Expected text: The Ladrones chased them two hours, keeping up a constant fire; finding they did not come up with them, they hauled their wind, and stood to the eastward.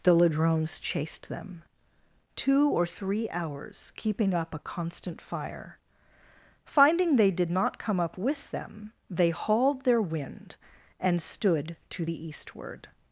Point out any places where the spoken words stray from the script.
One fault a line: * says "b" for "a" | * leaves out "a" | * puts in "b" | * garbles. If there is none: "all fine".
* puts in "or three"